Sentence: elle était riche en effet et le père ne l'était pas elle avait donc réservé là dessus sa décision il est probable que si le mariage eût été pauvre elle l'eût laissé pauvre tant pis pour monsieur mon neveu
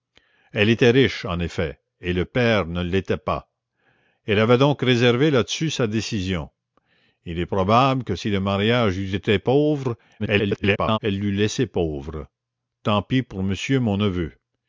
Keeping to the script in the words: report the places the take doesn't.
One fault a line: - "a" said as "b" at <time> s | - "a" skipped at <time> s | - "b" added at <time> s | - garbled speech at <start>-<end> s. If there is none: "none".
- garbled speech at 10.2-11.0 s